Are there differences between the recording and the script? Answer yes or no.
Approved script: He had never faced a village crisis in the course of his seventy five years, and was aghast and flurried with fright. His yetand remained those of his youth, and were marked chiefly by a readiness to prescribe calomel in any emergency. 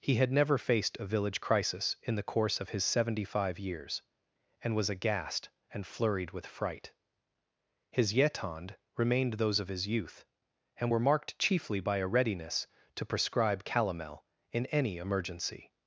no